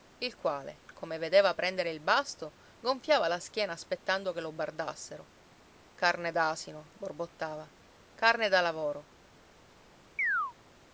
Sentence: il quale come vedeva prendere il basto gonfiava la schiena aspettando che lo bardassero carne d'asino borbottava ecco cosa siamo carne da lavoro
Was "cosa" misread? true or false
true